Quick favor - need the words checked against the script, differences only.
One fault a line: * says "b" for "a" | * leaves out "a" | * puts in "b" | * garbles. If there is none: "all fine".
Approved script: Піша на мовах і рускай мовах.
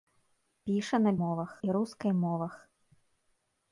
all fine